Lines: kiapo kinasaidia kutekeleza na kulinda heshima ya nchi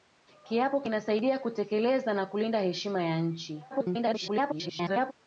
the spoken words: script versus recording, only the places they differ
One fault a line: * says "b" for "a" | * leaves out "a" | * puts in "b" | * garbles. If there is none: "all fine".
* garbles